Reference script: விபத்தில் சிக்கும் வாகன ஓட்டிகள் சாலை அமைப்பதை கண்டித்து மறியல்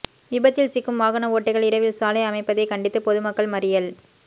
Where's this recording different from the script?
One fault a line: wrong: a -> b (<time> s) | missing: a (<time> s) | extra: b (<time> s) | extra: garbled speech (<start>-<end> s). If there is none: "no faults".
extra: இரவில் (1.7 s)
extra: பொதுமக்கள் (3.0 s)